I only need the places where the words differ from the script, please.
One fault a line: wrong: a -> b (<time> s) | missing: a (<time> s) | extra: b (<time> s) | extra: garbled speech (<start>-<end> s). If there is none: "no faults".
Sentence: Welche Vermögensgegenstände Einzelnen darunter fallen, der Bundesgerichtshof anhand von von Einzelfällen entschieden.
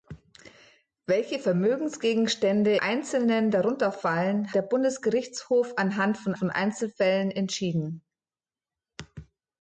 no faults